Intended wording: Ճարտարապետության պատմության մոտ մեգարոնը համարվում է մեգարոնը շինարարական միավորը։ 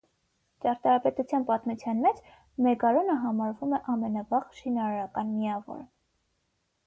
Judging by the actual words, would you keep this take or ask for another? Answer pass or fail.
fail